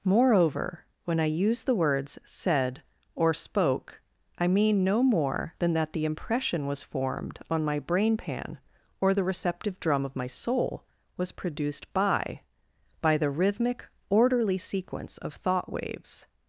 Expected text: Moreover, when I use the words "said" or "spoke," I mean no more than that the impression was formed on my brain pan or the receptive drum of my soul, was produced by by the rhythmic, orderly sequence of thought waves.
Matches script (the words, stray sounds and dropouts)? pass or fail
pass